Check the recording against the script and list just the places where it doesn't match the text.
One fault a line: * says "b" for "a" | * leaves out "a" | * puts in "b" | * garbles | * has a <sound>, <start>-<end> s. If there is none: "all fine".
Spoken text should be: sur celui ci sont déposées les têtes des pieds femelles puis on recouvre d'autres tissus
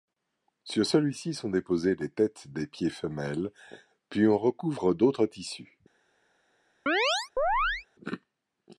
* has a chirp, 6.9-7.9 s